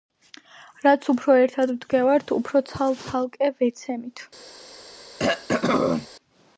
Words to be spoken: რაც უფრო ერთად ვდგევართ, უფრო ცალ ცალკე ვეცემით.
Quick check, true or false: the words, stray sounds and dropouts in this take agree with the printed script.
false